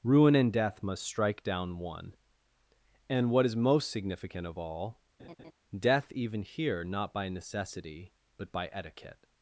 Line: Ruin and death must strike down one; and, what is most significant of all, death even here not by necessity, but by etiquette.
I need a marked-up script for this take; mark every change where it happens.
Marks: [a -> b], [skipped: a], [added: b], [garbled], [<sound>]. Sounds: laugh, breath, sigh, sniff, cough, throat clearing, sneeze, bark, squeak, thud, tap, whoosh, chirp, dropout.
Ruin and death must strike down one; and, what is most significant of all, [laugh] death even here not by necessity, but by etiquette.